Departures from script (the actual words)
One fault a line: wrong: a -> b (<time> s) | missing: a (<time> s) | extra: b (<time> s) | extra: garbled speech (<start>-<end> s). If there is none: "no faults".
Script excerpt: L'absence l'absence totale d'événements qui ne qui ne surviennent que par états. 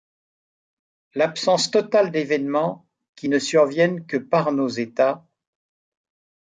missing: l'absence (1.7 s)
missing: qui ne (3.4 s)
extra: nos (4.5 s)